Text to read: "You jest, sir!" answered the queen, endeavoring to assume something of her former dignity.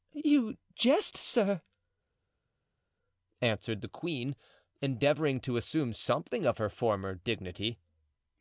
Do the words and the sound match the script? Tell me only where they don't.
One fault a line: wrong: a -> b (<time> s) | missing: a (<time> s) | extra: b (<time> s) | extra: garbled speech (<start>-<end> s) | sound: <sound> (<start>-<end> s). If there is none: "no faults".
no faults